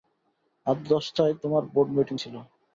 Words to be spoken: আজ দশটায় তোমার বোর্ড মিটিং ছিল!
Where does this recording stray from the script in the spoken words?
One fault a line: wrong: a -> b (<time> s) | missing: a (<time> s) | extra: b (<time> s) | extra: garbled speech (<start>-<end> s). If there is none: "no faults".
no faults